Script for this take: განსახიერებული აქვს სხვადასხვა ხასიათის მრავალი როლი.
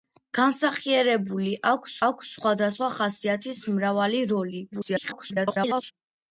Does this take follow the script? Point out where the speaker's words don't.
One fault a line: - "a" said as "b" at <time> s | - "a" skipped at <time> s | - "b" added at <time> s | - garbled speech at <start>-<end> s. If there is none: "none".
- "აქვს" added at 2.1 s
- garbled speech at 4.7-5.9 s